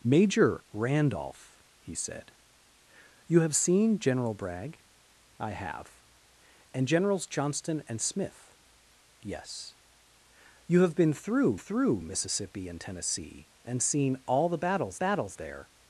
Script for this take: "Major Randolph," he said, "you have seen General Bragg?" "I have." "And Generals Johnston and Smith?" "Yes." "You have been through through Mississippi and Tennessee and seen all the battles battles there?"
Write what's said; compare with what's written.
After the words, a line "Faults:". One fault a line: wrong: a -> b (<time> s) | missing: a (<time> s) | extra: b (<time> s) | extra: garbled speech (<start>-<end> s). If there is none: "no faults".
"Major Randolph," he said, "you have seen General Bragg?" "I have." "And Generals Johnston and Smith?" "Yes." "You have been through through Mississippi and Tennessee and seen all the battles battles there?"
Faults:
no faults